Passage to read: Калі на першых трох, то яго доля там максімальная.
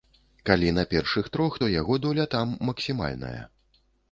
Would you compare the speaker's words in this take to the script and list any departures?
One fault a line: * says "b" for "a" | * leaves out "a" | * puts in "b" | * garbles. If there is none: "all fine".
all fine